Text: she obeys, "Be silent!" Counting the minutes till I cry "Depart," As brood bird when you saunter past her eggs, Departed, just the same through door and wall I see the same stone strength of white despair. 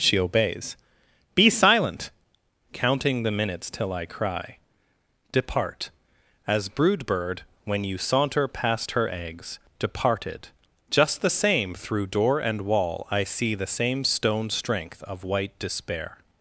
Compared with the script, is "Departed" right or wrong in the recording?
right